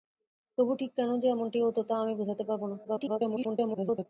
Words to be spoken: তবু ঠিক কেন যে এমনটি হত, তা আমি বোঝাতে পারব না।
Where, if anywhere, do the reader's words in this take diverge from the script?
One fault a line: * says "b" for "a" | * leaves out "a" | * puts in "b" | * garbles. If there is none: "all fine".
* garbles